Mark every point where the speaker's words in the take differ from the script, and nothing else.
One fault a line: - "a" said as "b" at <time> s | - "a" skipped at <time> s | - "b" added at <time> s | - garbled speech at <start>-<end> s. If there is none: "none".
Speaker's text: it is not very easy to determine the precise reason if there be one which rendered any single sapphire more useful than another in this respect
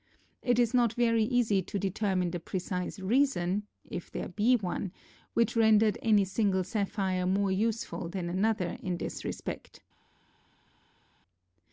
none